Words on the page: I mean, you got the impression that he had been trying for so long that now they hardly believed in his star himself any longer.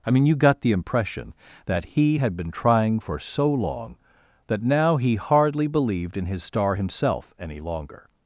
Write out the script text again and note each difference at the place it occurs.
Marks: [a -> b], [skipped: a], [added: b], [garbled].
I mean, you got the impression that he had been trying for so long that now [they -> he] hardly believed in his star himself any longer.